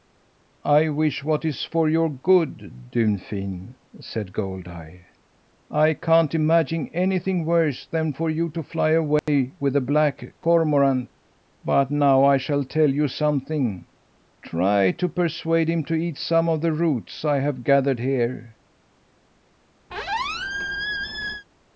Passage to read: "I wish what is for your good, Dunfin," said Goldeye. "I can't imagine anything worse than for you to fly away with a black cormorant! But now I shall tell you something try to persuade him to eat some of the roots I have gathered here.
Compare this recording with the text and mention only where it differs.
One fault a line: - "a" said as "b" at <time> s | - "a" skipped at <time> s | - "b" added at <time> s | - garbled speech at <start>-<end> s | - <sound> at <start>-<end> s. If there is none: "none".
- dropout at 9.2-9.3 s
- squeak at 19.9-21.5 s